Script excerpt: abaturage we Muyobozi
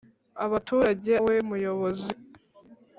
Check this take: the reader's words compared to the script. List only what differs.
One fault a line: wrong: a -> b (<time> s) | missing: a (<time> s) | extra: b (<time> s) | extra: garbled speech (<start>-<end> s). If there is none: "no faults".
no faults